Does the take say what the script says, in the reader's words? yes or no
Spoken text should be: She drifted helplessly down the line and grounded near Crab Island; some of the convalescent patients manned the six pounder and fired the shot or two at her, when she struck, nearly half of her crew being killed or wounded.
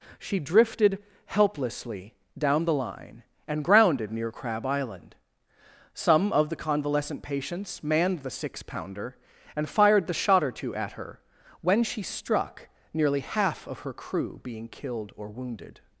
yes